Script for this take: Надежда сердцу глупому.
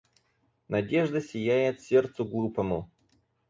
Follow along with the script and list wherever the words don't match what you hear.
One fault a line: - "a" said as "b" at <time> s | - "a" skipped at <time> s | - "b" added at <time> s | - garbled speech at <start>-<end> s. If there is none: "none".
- "сияет" added at 1.2 s